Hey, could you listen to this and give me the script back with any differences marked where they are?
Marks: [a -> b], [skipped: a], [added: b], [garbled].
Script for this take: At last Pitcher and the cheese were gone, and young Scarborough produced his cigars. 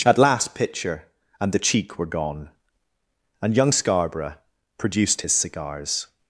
At last Pitcher and the [cheese -> cheek] were gone, and young Scarborough produced his cigars.